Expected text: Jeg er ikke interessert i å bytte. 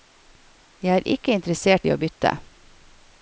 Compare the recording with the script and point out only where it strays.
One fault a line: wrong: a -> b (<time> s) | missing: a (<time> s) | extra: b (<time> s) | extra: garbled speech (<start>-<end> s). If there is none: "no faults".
no faults